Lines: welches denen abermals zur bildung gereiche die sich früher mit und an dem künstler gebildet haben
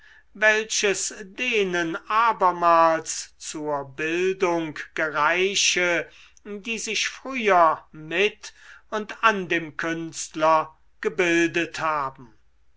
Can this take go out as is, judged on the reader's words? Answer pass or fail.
pass